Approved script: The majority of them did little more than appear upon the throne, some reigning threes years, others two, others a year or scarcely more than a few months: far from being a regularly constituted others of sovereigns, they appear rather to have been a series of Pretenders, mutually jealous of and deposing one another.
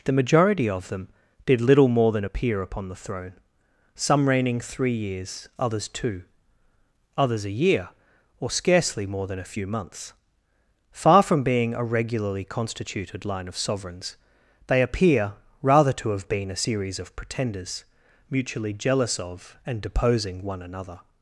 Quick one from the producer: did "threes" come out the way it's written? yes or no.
no